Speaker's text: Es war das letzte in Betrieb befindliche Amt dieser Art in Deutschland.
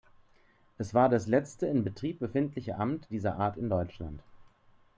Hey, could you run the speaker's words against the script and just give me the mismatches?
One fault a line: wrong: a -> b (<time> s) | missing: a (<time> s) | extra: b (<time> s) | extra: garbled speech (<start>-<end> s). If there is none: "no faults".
no faults